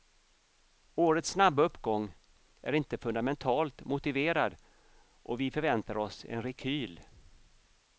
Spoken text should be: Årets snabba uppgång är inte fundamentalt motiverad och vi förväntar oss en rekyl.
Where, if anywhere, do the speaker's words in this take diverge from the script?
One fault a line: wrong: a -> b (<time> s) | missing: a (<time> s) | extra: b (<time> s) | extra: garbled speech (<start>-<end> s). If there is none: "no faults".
no faults